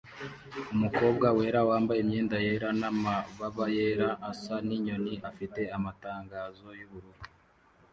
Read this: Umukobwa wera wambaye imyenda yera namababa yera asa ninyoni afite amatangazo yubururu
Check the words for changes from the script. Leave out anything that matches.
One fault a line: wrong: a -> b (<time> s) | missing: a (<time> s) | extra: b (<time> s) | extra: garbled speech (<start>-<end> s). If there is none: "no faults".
no faults